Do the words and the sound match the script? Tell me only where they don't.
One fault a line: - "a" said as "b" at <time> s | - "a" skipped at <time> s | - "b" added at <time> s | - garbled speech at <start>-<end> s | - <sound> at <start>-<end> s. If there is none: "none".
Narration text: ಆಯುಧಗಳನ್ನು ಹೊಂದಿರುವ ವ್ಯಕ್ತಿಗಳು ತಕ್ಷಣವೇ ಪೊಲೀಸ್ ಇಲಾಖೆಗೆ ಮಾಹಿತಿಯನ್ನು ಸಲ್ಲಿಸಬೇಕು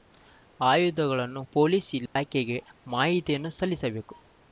- "ಹೊಂದಿರುವ ವ್ಯಕ್ತಿಗಳು ತಕ್ಷಣವೇ" skipped at 1.4 s
- dropout at 2.1-2.2 s